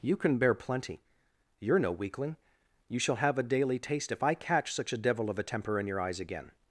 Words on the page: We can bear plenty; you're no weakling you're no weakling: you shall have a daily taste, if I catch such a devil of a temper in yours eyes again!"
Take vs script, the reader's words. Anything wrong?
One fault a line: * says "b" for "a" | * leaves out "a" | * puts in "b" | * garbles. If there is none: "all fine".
* says "You" for "We"
* leaves out "you're no weakling"
* says "your" for "yours"